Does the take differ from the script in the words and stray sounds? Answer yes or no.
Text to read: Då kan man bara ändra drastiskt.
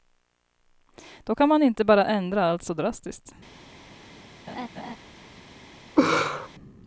yes